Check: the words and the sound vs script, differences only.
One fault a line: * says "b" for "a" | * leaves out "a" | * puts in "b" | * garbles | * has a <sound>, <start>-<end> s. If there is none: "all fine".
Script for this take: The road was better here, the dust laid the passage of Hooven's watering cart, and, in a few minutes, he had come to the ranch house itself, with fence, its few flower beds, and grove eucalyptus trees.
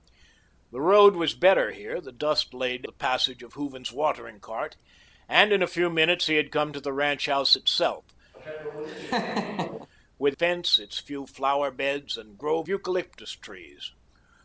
* has a laugh, 8.3-9.9 s